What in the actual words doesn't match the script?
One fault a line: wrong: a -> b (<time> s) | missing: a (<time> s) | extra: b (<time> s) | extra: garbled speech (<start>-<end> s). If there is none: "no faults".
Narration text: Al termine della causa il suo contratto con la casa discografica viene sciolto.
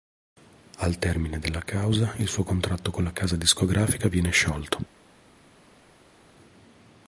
no faults